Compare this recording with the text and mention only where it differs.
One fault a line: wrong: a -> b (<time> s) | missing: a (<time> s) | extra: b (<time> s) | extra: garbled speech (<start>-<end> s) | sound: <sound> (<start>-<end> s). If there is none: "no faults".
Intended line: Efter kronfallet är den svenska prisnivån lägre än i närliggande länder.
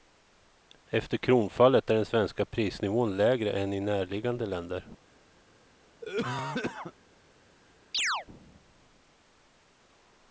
sound: cough (6.0-6.9 s)
sound: chirp (7.9-8.3 s)